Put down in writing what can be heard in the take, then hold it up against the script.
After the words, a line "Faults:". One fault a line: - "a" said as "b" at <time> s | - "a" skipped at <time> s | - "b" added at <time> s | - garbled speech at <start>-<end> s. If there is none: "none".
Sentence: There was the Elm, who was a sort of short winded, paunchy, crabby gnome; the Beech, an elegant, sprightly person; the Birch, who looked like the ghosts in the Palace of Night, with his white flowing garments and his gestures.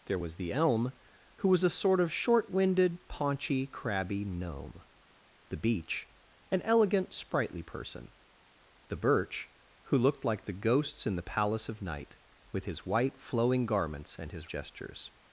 There was the Elm, who was a sort of short winded, paunchy, crabby gnome; the Beech, an elegant, sprightly person; the Birch, who looked like the ghosts in the Palace of Night, with his white flowing garments and his gestures.
Faults:
none